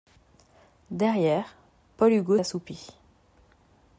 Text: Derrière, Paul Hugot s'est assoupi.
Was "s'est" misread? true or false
true